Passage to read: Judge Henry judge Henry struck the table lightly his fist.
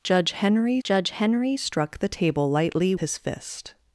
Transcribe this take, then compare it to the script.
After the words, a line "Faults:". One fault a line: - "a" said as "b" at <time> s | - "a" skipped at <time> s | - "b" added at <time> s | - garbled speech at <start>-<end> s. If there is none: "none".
Judge Henry judge Henry struck the table lightly his fist.
Faults:
none